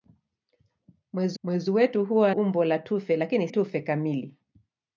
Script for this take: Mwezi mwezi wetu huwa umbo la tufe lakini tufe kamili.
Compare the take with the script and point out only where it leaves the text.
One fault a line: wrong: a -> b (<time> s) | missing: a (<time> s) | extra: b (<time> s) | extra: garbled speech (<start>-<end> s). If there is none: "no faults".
no faults